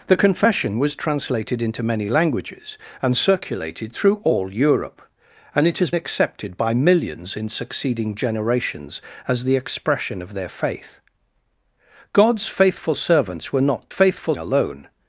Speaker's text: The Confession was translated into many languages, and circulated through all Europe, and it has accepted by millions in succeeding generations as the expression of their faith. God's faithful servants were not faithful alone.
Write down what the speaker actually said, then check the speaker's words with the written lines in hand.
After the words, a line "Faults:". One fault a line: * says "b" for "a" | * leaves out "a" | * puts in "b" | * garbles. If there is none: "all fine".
The Confession was translated into many languages, and circulated through all Europe, and it has accepted by millions in succeeding generations as the expression of their faith. God's faithful servants were not faithful alone.
Faults:
all fine